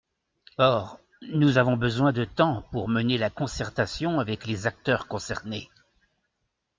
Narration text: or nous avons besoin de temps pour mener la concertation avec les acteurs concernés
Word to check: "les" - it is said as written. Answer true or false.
true